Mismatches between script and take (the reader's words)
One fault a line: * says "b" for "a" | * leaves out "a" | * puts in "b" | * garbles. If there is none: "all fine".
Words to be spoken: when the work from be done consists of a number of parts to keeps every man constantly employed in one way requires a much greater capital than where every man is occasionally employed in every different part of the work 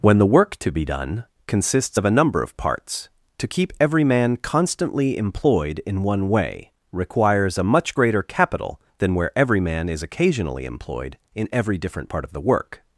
* says "to" for "from"
* says "keep" for "keeps"